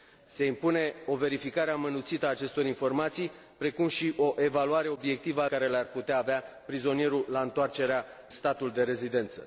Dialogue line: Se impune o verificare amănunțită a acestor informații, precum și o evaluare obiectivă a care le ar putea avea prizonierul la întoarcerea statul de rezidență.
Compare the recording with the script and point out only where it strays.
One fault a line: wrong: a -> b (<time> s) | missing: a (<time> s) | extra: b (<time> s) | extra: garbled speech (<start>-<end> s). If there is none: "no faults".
no faults